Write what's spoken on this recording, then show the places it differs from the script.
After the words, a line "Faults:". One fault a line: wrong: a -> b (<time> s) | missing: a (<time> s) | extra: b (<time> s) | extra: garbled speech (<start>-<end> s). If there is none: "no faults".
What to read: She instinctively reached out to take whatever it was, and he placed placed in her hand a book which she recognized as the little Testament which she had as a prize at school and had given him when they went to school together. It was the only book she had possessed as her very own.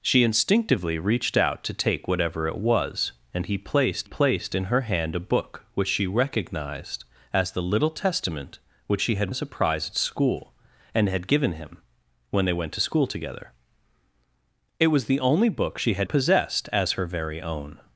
She instinctively reached out to take whatever it was, and he placed placed in her hand a book which she recognized as the little Testament which she had as a prize at school and had given him when they went to school together. It was the only book she had possessed as her very own.
Faults:
no faults